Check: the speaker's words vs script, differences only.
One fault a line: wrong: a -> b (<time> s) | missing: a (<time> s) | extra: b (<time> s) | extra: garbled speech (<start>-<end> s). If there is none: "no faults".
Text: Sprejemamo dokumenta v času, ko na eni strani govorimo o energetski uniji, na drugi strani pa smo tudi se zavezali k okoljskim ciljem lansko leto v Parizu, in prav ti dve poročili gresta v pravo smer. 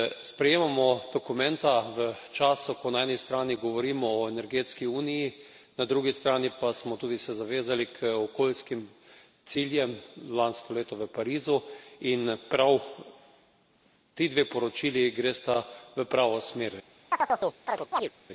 no faults